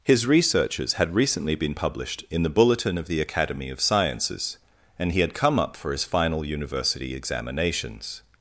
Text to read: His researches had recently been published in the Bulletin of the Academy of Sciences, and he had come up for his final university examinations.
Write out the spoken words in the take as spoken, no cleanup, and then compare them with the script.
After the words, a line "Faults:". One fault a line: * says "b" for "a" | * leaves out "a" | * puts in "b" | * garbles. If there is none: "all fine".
His researches had recently been published in the Bulletin of the Academy of Sciences, and he had come up for his final university examinations.
Faults:
all fine